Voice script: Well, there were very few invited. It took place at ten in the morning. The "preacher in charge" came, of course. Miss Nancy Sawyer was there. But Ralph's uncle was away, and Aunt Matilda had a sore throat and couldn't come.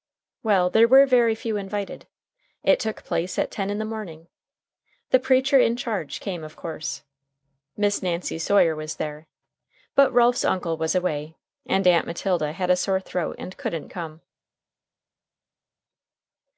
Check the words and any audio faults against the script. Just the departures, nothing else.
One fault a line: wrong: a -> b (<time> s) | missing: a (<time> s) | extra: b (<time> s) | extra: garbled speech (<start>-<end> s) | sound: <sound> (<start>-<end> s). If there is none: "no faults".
no faults